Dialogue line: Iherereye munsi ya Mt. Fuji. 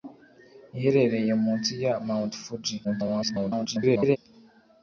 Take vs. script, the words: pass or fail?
fail